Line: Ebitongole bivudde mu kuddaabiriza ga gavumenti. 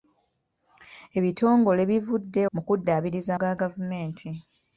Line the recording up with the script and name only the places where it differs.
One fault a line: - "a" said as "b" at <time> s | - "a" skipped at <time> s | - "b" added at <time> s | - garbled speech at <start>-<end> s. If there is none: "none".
none